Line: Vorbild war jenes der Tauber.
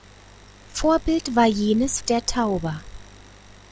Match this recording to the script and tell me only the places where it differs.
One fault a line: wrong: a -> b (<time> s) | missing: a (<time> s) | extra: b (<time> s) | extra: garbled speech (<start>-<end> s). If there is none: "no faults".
no faults